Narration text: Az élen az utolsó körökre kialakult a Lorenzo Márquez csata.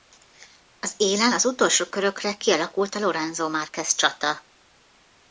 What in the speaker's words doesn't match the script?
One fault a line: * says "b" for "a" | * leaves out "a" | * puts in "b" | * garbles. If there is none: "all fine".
all fine